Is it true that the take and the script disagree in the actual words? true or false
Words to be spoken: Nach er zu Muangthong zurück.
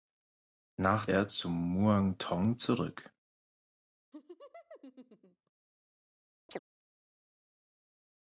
false